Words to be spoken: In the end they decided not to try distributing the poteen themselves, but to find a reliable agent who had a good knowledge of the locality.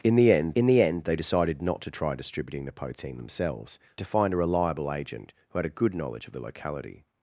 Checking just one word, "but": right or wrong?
wrong